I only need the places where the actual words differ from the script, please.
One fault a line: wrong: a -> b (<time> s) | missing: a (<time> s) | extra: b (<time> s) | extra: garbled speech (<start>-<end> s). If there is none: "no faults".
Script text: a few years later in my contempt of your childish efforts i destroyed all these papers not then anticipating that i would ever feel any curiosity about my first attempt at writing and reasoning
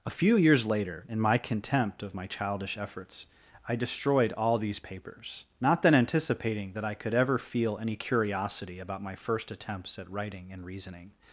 wrong: your -> my (2.1 s)
wrong: would -> could (6.9 s)
wrong: attempt -> attempts (9.5 s)